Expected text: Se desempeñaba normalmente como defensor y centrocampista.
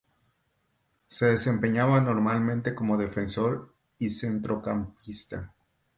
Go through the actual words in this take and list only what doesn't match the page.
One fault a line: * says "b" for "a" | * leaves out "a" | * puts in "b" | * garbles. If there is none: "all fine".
all fine